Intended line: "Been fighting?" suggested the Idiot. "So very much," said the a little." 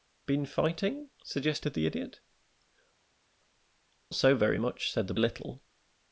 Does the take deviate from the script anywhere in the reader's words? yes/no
no